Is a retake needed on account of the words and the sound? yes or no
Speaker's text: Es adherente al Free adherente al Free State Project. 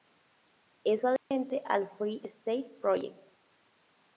yes